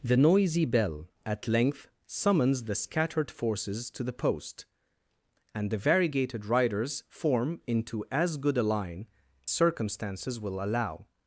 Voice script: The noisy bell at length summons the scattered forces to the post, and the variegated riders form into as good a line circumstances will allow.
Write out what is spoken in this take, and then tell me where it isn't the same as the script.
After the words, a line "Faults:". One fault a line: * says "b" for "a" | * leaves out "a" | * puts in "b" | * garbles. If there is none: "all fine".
The noisy bell at length summons the scattered forces to the post, and the variegated riders form into as good a line circumstances will allow.
Faults:
all fine